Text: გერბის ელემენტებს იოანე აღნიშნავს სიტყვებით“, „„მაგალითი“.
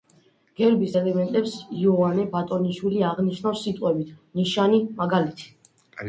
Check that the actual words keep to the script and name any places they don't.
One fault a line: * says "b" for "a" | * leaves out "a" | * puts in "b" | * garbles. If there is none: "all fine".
* puts in "ბატონიშვილი"
* puts in "ნიშანი"